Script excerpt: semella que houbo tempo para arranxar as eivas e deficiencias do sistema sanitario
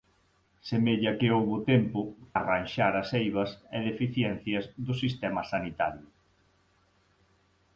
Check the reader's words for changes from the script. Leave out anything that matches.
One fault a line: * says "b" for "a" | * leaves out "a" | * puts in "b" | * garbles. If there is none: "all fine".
* leaves out "para"